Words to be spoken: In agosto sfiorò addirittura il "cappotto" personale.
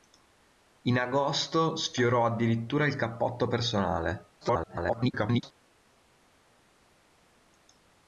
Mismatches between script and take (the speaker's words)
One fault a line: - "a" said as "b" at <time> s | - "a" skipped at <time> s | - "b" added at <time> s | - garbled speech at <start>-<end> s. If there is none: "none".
- garbled speech at 4.4-5.5 s